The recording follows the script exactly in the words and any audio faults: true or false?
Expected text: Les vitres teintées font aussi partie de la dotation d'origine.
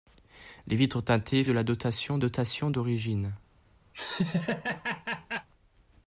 false